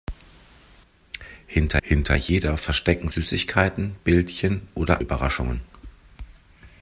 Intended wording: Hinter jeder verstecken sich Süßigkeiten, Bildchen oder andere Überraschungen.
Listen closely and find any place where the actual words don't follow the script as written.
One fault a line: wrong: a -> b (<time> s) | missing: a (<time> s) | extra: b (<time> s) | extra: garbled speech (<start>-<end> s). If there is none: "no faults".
extra: hinter (1.8 s)
missing: sich (3.1 s)
missing: andere (5.0 s)